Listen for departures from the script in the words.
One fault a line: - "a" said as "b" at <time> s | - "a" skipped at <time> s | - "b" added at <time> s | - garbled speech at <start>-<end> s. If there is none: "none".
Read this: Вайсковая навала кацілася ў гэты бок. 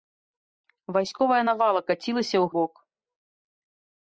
- "гэты" skipped at 2.5 s